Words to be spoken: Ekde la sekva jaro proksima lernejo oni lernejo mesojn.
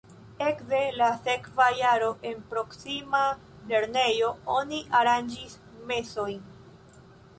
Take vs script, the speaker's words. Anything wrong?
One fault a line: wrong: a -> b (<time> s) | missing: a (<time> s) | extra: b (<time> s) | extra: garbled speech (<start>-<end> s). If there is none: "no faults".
extra: en (2.3 s)
wrong: lernejo -> aranĝis (5.0 s)